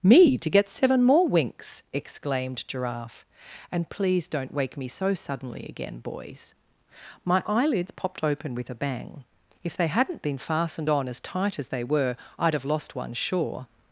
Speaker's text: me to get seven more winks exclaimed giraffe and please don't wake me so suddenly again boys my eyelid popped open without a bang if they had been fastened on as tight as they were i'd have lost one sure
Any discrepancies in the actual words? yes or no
yes